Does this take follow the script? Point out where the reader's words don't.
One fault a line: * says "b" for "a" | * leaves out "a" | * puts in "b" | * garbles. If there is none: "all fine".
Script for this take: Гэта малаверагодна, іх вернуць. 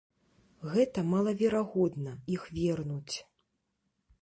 all fine